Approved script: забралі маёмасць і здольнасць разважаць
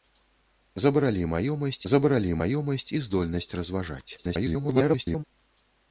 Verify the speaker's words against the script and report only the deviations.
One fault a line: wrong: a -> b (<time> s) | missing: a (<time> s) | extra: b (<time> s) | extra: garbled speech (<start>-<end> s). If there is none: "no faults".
extra: забралі маёмасць (1.9 s)
extra: garbled speech (4.2-5.2 s)